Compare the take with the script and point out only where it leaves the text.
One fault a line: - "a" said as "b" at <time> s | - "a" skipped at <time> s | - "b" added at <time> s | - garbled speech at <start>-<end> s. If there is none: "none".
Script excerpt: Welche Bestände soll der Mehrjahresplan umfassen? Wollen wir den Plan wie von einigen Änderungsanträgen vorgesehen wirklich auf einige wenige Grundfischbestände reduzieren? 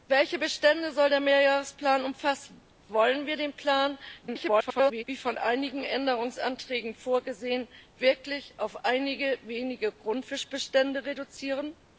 - garbled speech at 4.2-5.0 s